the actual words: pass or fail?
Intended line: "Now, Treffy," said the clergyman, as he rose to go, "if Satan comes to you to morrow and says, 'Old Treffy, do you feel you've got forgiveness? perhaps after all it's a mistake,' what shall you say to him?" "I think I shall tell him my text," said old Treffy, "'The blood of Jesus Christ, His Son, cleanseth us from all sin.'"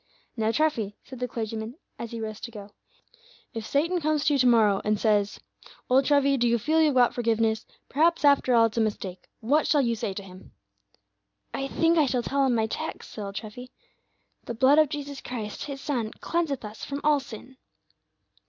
pass